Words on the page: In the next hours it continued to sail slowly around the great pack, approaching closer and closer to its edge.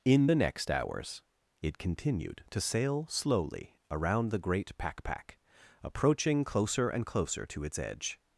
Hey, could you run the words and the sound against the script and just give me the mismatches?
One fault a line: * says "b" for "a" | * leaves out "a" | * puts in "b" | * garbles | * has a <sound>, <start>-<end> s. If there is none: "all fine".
* puts in "pack"